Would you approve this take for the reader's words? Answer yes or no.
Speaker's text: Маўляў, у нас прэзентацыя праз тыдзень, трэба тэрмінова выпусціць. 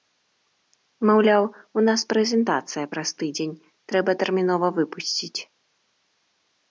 yes